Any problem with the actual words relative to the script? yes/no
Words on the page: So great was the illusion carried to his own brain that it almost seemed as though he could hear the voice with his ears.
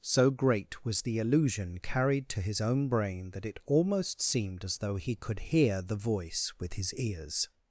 no